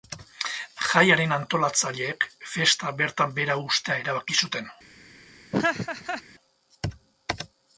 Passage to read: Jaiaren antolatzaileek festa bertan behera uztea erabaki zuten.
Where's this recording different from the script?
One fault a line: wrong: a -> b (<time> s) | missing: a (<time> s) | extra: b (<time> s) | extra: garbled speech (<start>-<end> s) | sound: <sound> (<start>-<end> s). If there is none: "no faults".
sound: laugh (5.5-6.2 s)